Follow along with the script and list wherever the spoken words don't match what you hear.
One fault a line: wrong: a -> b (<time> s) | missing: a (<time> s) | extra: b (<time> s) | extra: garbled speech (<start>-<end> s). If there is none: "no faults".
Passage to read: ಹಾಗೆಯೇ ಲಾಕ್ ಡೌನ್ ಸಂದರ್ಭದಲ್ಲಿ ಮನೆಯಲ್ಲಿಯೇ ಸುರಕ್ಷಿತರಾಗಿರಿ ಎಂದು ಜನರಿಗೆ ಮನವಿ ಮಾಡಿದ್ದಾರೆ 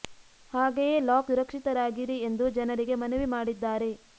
missing: ಡೌನ್ ಸಂದರ್ಭದಲ್ಲಿ ಮನೆಯಲ್ಲಿಯೇ (1.3 s)